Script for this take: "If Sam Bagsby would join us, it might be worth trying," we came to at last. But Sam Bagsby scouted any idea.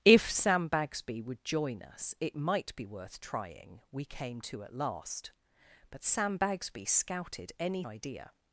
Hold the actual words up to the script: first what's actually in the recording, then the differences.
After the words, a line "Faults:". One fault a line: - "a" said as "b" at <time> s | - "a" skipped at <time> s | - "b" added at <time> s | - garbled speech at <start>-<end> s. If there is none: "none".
"If Sam Bagsby would join us, it might be worth trying," we came to at last. But Sam Bagsby scouted any idea.
Faults:
none